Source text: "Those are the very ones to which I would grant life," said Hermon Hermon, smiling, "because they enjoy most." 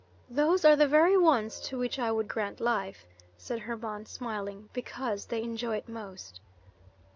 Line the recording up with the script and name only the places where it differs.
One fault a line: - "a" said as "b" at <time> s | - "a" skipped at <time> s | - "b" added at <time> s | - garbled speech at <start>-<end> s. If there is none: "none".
- "Hermon" skipped at 4.1 s
- "it" added at 5.8 s